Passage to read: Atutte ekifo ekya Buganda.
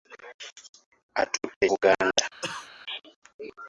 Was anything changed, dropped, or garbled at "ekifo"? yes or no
yes